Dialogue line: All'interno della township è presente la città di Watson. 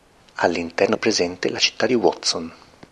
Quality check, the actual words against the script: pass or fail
fail